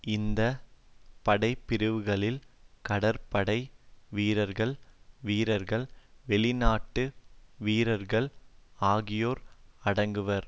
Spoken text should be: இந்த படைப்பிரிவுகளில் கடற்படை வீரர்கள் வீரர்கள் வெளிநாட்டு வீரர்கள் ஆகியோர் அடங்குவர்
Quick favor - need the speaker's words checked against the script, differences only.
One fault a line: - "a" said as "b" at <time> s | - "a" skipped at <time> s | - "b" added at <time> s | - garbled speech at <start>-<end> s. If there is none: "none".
none